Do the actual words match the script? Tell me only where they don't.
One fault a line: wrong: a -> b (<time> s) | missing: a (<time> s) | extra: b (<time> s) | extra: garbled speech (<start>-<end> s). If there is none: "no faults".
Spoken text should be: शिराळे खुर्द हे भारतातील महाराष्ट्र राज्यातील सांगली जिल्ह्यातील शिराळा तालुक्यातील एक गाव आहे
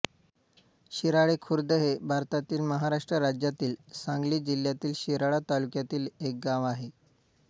no faults